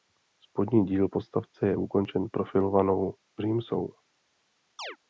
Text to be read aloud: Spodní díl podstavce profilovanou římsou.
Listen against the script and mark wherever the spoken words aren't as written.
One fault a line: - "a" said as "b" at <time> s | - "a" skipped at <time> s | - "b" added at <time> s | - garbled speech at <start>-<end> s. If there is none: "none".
- "je ukončen" added at 1.7 s